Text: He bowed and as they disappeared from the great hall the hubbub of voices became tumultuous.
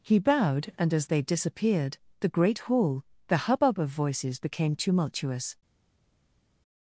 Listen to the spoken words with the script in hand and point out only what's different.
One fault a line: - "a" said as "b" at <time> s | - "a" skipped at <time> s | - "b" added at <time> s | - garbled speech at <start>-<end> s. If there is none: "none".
- "from" skipped at 2.0 s